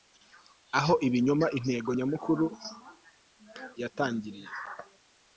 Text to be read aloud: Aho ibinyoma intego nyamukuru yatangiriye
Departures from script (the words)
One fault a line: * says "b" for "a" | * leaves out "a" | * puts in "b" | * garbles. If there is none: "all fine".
all fine